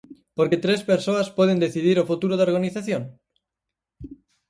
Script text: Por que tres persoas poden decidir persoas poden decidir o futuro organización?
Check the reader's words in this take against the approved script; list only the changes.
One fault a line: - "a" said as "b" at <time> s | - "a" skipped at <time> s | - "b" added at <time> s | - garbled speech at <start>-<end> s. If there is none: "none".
- "persoas poden decidir" skipped at 2.0 s
- "da" added at 2.4 s